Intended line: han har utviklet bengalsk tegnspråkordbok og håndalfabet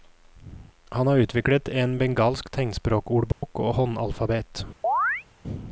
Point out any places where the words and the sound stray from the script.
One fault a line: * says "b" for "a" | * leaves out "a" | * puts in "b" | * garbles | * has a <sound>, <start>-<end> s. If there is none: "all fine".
* puts in "en"
* has a dropout, 3.3-3.4 s
* has a chirp, 4.8-5.2 s